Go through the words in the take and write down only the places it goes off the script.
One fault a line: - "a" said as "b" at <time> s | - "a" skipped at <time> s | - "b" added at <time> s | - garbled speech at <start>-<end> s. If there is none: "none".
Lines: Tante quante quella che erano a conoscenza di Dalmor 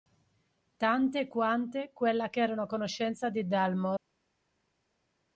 none